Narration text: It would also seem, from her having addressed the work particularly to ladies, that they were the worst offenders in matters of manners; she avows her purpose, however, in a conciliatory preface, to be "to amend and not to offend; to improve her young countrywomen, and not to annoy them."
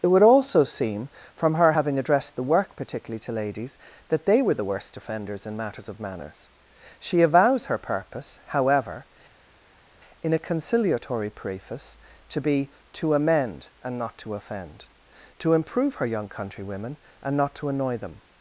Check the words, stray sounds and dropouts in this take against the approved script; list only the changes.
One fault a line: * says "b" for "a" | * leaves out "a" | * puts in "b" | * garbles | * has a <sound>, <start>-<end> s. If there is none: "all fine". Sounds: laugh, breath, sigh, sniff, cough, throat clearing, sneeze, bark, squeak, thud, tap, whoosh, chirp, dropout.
all fine